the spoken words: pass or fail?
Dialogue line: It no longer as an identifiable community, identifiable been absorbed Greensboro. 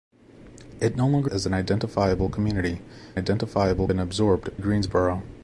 pass